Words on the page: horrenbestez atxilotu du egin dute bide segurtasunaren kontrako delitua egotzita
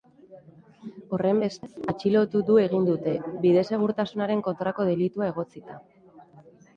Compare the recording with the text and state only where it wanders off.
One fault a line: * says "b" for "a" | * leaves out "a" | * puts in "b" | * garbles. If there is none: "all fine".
all fine